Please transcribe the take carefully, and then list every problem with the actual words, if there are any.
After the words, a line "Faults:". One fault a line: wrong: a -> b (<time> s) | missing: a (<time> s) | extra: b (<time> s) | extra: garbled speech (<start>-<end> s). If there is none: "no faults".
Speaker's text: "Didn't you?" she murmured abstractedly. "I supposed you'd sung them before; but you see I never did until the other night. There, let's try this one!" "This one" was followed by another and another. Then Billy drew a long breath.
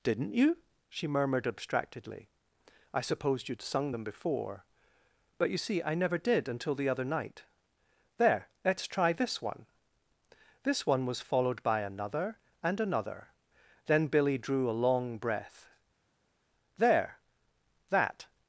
"Didn't you?" she murmured abstractedly. "I supposed you'd sung them before; but you see I never did until the other night. There, let's try this one!" "This one" was followed by another and another. Then Billy drew a long breath. "There! that
Faults:
extra: There that (16.8 s)